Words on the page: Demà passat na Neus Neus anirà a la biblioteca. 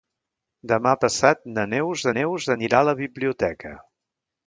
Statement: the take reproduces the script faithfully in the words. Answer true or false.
true